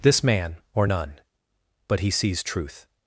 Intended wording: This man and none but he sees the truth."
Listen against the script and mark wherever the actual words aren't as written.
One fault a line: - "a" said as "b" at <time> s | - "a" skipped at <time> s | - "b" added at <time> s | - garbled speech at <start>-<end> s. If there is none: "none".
- "and" said as "or" at 0.7 s
- "the" skipped at 2.4 s